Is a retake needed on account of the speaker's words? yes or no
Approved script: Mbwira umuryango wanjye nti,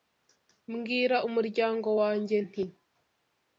no